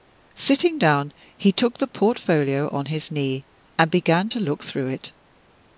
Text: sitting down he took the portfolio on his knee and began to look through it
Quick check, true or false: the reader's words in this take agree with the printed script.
true